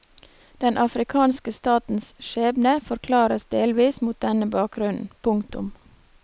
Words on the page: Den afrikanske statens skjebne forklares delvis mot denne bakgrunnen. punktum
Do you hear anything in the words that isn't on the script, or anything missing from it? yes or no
no